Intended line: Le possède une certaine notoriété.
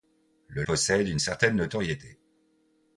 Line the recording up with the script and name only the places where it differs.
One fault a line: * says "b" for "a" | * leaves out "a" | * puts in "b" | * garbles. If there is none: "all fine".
all fine